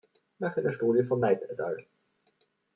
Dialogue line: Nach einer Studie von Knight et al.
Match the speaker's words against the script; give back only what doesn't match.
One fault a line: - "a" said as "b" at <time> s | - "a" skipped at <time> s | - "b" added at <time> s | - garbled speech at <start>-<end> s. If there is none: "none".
none